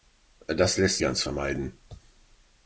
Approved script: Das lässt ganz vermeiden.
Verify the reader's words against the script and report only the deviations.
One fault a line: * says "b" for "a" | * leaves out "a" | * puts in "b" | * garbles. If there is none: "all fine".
all fine